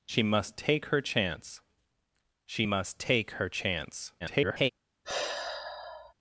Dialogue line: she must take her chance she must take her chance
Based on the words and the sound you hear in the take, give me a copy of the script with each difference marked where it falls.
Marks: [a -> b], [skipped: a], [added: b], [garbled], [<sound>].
she must take her chance she must take her chance [garbled] [sigh]